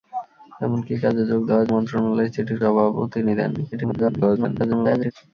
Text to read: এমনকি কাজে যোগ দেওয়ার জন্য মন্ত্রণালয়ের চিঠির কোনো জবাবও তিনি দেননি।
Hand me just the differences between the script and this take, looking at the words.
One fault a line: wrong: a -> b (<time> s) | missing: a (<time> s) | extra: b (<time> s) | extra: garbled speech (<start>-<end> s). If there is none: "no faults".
missing: জন্য (1.7 s)
missing: কোনো (2.6 s)
extra: garbled speech (3.7-5.1 s)